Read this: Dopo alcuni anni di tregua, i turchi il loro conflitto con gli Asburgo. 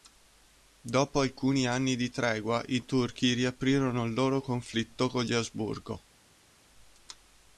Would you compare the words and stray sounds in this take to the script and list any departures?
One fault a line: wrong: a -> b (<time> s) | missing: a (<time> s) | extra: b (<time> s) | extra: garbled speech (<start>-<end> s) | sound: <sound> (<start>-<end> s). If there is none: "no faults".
extra: riaprirono (3.3 s)